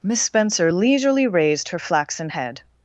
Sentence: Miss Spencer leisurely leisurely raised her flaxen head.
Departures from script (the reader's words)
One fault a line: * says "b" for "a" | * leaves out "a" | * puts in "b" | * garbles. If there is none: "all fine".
* leaves out "leisurely"